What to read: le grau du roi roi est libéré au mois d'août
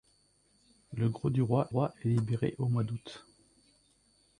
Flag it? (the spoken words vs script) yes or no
no